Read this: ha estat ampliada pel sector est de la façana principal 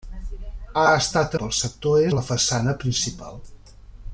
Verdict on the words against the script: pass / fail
fail